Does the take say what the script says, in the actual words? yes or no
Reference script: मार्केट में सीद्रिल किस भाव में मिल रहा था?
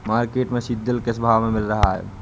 no